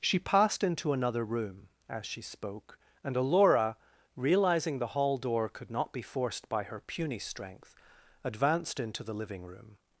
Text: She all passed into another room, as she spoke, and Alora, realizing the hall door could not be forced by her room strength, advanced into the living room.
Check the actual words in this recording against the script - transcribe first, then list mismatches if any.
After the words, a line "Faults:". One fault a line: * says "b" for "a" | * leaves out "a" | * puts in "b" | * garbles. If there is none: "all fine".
She passed into another room, as she spoke, and Alora, realizing the hall door could not be forced by her puny strength, advanced into the living room.
Faults:
* leaves out "all"
* says "puny" for "room"